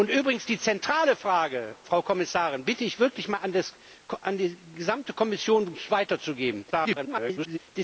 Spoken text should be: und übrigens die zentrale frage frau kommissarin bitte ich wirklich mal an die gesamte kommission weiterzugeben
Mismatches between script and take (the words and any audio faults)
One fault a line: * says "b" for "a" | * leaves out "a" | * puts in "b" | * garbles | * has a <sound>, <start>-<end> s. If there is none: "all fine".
* garbles